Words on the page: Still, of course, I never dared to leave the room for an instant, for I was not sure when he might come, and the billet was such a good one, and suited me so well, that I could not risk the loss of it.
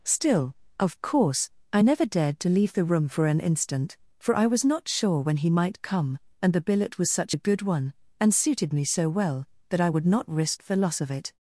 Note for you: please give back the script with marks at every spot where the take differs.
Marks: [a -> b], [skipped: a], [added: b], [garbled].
Still, of course, I never dared to leave the room for an instant, for I was not sure when he might come, and the billet was such a good one, and suited me so well, that I [could -> would] not risk the loss of it.